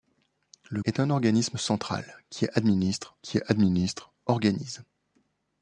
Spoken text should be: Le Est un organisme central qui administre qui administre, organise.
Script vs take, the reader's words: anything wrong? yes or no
no